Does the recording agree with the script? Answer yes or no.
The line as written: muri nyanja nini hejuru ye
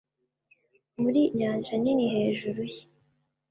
yes